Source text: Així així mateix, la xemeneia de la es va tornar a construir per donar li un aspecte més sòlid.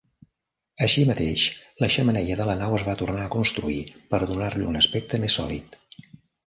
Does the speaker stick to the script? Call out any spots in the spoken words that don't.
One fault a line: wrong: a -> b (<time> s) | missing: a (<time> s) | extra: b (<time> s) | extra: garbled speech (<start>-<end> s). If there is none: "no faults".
missing: així (1.0 s)
extra: nau (2.6 s)